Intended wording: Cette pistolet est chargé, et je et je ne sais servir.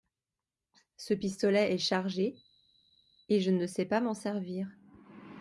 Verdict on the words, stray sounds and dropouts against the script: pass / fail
fail